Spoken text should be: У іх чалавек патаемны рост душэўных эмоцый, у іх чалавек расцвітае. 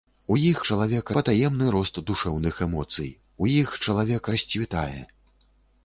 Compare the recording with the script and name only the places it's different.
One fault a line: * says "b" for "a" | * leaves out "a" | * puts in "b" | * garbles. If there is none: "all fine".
all fine